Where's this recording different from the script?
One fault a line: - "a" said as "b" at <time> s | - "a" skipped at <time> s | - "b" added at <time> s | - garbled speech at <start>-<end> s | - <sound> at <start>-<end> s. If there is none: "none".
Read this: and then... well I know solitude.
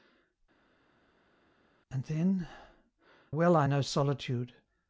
none